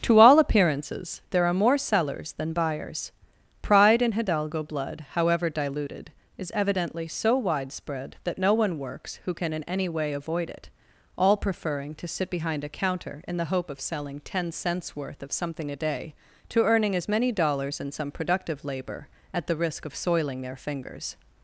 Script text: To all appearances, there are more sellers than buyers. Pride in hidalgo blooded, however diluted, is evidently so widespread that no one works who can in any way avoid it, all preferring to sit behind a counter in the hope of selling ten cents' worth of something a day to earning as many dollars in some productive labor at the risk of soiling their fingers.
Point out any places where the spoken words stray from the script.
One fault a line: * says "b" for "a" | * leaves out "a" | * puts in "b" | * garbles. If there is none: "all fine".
* says "blood" for "blooded"